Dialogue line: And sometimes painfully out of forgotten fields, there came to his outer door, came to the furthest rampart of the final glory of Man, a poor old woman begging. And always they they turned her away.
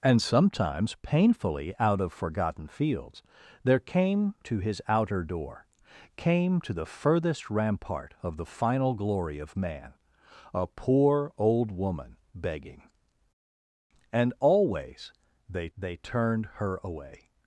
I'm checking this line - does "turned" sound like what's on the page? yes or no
yes